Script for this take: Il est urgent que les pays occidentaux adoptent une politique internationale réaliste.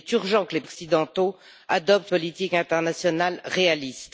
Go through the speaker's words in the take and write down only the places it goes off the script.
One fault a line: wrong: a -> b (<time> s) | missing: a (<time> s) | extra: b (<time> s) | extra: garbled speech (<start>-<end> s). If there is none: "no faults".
missing: pays (0.6 s)
missing: une (2.1 s)